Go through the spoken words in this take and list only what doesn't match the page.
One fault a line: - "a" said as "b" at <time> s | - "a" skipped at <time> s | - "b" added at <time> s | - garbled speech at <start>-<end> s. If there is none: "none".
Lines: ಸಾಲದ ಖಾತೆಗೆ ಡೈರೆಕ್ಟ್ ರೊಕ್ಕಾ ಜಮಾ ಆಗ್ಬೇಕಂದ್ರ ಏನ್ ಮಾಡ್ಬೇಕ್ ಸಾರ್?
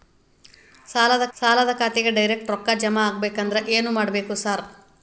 - "ಸಾಲದ" added at 1.3 s